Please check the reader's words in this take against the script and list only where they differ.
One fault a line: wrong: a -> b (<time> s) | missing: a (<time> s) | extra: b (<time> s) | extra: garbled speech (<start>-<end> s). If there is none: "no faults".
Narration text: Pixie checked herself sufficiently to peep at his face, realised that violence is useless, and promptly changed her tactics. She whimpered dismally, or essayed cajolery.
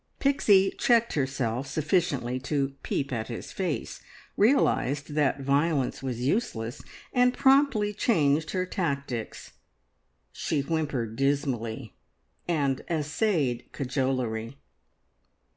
wrong: is -> was (6.0 s)
wrong: or -> and (12.5 s)